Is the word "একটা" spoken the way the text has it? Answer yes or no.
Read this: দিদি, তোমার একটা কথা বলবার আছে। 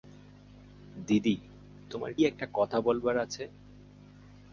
yes